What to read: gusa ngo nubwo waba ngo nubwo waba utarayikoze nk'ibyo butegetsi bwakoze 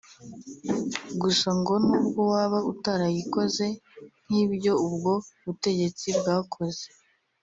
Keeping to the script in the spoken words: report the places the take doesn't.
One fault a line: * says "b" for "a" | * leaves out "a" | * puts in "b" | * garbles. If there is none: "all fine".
* leaves out "ngo nubwo waba"
* puts in "ubwo"